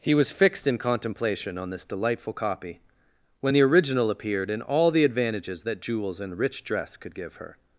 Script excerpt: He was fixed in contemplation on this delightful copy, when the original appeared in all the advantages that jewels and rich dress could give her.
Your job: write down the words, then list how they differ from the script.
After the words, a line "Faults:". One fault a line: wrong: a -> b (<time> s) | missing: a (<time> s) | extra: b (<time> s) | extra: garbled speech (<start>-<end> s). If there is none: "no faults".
He was fixed in contemplation on this delightful copy, when the original appeared in all the advantages that jewels and rich dress could give her.
Faults:
no faults